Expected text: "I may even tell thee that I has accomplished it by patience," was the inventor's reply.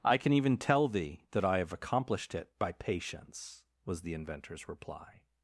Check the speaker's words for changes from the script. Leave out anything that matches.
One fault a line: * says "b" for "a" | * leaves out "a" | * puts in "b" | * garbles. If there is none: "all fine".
* says "can" for "may"
* says "have" for "has"